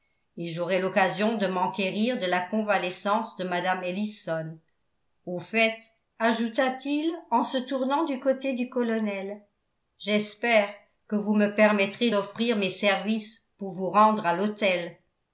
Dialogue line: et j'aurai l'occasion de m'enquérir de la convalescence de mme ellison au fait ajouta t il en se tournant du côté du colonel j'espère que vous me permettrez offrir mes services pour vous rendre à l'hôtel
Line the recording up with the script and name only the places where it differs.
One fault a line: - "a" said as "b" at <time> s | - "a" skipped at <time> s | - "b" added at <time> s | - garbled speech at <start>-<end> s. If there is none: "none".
none